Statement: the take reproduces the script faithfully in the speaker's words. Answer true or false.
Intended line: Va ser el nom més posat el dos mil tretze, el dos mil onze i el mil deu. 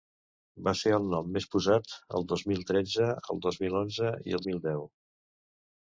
true